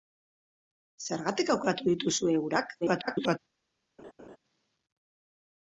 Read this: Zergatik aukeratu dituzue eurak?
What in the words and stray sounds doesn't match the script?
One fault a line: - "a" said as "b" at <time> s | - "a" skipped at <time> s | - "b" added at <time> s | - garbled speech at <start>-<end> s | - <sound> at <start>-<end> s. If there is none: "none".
- garbled speech at 2.8-3.4 s
- laugh at 4.0-4.4 s